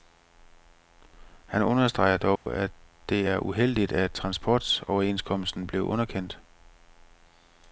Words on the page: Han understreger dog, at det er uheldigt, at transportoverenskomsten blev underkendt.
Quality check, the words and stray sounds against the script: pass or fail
fail